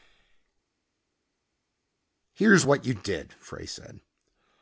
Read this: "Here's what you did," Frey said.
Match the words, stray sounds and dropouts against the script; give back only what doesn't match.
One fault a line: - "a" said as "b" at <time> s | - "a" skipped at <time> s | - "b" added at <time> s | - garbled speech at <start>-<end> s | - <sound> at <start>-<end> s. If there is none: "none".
none